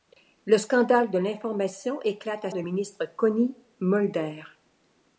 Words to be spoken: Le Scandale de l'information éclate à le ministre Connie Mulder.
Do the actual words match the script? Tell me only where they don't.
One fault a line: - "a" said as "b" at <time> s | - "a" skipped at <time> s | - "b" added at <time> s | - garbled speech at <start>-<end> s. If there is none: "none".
none